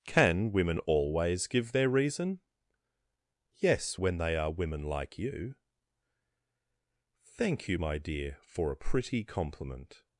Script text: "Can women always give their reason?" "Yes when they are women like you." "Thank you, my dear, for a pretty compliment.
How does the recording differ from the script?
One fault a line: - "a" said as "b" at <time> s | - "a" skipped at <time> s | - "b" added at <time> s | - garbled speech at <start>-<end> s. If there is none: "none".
none